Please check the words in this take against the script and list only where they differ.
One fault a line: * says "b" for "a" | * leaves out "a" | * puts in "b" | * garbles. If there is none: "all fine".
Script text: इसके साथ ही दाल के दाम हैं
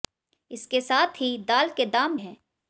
all fine